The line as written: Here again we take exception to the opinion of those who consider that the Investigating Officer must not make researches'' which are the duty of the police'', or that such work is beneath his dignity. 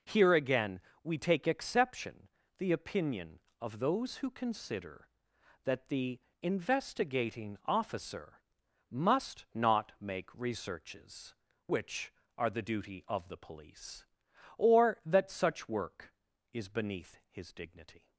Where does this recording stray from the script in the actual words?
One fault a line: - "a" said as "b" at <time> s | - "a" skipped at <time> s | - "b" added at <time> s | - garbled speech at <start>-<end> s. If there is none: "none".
- "to" skipped at 2.3 s